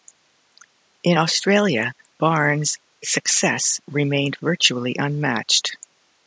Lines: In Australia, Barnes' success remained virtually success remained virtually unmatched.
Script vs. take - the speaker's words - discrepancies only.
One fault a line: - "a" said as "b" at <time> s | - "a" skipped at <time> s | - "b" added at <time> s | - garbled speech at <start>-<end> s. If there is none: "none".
- "success remained virtually" skipped at 4.9 s